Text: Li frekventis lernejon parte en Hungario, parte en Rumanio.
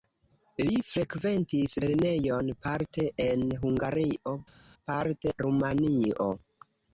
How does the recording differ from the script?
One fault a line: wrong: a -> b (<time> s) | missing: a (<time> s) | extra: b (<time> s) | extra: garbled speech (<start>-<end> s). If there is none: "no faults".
missing: en (5.3 s)